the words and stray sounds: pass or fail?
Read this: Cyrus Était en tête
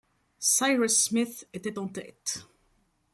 fail